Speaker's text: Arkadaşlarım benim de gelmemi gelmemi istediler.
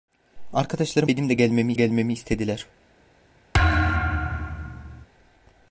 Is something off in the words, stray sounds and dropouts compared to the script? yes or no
yes